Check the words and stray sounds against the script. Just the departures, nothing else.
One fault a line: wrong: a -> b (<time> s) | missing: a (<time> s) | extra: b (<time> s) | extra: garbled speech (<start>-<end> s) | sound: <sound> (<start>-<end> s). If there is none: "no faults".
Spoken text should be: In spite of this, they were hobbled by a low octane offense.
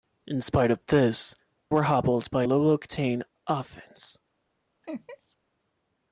missing: they (1.4 s)
missing: a (2.4 s)
sound: laugh (4.8-5.4 s)